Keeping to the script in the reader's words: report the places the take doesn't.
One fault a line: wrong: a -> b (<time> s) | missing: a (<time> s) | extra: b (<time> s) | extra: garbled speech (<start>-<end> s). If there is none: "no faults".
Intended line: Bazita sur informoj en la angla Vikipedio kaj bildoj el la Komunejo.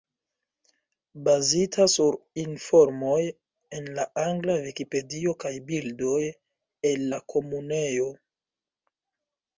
no faults